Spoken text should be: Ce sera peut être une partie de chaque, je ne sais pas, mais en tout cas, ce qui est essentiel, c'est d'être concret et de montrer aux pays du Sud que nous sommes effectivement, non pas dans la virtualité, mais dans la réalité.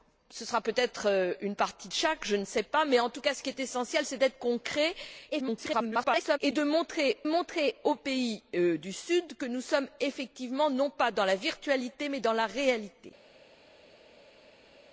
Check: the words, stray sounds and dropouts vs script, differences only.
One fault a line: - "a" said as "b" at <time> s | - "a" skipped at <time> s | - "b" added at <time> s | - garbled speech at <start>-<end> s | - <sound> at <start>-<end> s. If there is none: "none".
- garbled speech at 5.3-6.4 s
- "montrer" added at 7.2 s